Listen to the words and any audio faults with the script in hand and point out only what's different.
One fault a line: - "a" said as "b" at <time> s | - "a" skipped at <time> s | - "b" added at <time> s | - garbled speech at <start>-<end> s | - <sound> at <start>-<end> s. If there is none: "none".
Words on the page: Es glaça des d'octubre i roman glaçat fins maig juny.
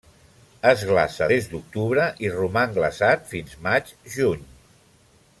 none